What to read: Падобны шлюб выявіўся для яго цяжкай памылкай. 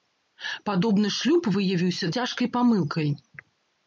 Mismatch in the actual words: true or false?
true